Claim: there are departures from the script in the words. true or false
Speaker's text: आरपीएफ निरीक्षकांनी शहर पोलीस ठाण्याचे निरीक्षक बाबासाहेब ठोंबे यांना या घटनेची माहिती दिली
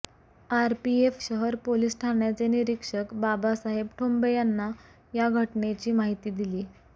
true